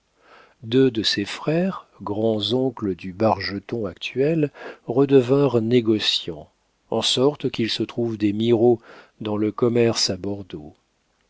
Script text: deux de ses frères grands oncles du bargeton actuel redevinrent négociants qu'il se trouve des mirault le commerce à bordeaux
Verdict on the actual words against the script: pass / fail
fail